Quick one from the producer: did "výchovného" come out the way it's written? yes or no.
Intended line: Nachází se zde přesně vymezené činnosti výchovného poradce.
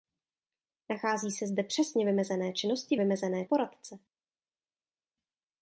no